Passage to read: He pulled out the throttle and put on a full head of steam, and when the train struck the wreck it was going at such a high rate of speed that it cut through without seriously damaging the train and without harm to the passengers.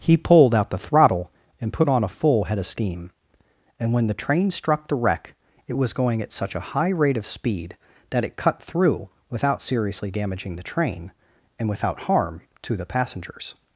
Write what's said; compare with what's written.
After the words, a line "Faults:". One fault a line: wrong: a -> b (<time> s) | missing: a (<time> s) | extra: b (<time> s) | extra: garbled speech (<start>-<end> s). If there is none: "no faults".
He pulled out the throttle and put on a full head of steam, and when the train struck the wreck it was going at such a high rate of speed that it cut through without seriously damaging the train and without harm to the passengers.
Faults:
no faults